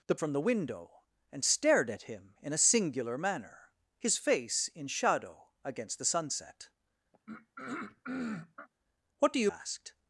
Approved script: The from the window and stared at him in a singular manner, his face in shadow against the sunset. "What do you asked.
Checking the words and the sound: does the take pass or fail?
fail